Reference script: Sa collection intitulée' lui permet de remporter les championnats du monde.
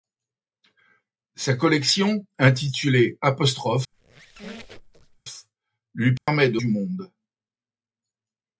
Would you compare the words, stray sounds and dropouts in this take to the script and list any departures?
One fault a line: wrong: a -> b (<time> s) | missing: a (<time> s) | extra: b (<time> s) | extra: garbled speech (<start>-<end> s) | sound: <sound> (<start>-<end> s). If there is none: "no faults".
sound: squeak (3.9-5.2 s)
sound: dropout (6.2-6.3 s)
missing: remporter les championnats (6.6 s)